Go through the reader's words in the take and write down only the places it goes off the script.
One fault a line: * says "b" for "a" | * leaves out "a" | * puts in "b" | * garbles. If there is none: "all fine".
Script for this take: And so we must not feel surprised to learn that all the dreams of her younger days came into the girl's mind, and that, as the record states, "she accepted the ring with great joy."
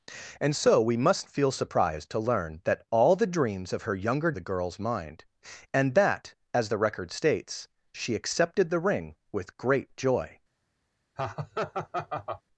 * leaves out "not"
* leaves out "days came into"